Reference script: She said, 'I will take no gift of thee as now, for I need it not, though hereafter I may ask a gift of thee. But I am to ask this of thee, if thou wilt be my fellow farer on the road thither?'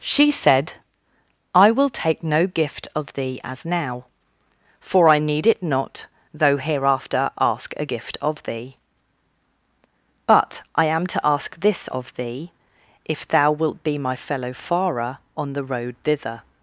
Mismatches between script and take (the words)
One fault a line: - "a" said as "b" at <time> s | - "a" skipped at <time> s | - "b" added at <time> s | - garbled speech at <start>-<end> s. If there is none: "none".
- "I may" skipped at 7.3 s